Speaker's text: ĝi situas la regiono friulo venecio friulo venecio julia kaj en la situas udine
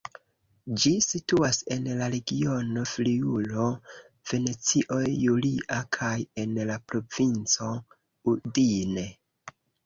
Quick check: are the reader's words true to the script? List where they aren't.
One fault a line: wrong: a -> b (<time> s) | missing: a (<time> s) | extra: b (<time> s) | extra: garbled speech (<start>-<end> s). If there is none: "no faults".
extra: en (1.8 s)
missing: friulo venecio (5.0 s)
wrong: situas -> provinco (6.9 s)